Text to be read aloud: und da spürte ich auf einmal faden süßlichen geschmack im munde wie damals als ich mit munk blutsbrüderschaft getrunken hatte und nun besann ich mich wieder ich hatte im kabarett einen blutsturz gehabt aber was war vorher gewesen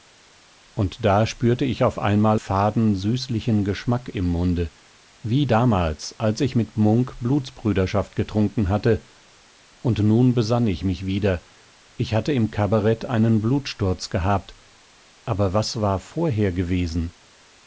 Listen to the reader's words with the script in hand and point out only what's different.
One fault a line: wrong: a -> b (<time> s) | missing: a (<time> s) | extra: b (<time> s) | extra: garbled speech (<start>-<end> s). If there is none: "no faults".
no faults